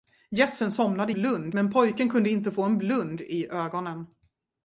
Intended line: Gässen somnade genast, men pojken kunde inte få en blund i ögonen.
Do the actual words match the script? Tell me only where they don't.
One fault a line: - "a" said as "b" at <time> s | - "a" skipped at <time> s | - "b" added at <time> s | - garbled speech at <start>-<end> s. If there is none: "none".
- "genast" said as "blund" at 1.1 s